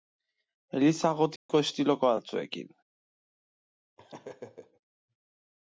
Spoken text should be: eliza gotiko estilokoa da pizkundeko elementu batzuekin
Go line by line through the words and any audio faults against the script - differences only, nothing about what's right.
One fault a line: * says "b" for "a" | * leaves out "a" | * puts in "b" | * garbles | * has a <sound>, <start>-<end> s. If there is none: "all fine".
* has a dropout, 1.4-1.5 s
* leaves out "da pizkundeko elementu"
* has a laugh, 4.0-4.8 s